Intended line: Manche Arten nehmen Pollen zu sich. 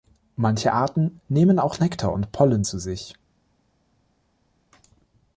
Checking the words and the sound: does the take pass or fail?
fail